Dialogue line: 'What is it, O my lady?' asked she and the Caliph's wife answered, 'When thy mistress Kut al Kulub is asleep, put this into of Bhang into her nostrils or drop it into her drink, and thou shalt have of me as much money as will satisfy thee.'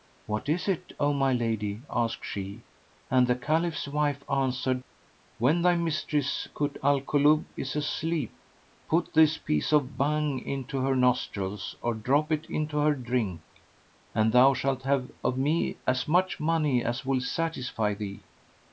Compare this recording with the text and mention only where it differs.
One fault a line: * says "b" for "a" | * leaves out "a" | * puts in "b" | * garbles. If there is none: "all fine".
* says "piece" for "into"